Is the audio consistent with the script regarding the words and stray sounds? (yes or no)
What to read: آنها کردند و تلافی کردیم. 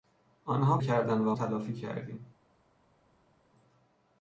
yes